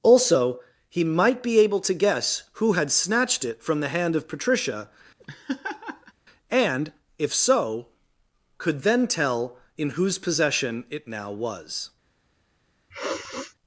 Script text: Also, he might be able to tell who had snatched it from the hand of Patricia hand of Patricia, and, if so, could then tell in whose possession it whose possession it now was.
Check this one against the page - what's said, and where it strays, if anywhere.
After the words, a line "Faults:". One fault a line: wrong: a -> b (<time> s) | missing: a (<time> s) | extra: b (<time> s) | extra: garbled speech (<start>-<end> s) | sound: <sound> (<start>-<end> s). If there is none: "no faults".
Also, he might be able to guess who had snatched it from the hand of Patricia, and, if so, could then tell in whose possession it now was.
Faults:
wrong: tell -> guess (1.9 s)
missing: hand of Patricia (4.9 s)
sound: laugh (5.2-6.1 s)
missing: whose possession it (11.1 s)
sound: sniff (12.9-13.6 s)